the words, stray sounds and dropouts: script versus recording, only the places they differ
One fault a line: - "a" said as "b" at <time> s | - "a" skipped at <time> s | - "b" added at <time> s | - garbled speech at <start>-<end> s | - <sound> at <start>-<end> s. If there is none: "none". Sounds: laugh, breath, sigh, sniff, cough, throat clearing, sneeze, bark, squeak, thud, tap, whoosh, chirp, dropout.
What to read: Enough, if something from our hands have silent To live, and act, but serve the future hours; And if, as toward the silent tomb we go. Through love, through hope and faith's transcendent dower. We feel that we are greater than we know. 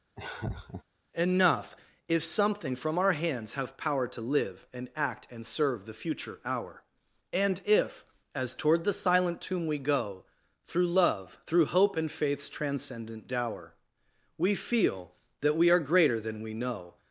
- laugh at 0.2-0.8 s
- "silent" said as "power" at 3.8 s
- "but" said as "and" at 5.3 s
- "hours" said as "hour" at 6.5 s